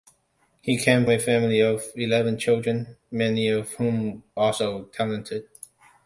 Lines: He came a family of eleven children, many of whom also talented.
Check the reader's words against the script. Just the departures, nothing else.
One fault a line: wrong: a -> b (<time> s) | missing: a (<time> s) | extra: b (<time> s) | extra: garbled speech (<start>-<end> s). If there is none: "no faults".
no faults